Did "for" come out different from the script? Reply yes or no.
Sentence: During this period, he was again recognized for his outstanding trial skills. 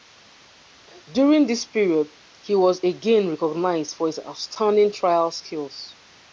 no